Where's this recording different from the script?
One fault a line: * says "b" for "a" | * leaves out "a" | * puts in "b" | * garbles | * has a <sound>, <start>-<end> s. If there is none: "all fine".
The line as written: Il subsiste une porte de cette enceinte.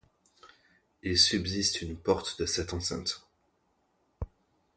all fine